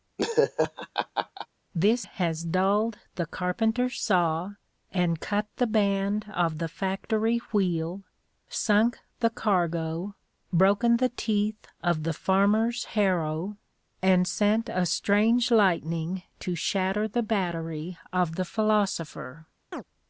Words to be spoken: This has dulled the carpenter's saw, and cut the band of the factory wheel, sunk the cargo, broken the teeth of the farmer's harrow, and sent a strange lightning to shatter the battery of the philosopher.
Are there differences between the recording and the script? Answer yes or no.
no